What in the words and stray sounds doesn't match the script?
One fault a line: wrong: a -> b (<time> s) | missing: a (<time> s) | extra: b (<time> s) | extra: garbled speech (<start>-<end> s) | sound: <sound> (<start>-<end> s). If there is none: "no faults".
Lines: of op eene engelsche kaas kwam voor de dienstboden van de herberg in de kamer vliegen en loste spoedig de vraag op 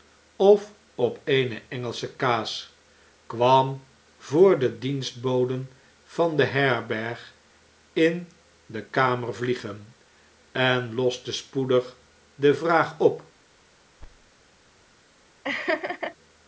sound: thud (14.0-14.3 s)
sound: laugh (15.4-16.2 s)